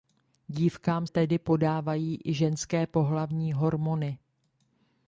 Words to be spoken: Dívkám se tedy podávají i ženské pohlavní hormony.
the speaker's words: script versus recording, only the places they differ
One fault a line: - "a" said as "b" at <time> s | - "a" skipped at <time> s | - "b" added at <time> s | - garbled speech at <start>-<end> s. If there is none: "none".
- "se" skipped at 1.1 s